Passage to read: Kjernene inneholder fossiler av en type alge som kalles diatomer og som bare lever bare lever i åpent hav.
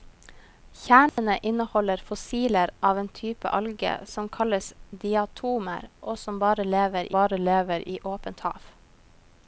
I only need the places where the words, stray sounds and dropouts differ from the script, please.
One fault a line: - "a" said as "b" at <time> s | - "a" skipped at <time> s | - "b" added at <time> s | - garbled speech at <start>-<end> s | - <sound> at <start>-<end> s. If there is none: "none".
- dropout at 1.1-1.2 s